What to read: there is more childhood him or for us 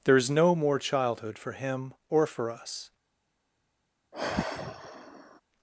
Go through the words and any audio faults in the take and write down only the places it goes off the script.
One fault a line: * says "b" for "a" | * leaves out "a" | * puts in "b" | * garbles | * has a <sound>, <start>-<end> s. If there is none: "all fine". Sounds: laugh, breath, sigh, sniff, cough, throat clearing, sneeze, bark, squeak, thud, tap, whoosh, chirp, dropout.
* puts in "no"
* puts in "for"
* has a sigh, 4.1-5.4 s